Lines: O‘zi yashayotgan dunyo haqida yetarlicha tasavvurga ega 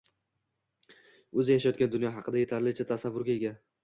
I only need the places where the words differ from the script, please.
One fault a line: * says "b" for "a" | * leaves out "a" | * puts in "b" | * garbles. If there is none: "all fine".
all fine